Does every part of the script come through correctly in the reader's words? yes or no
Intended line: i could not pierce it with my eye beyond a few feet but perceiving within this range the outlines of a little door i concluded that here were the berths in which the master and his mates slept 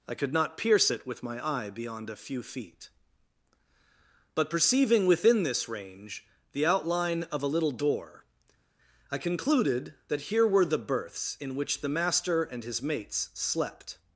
no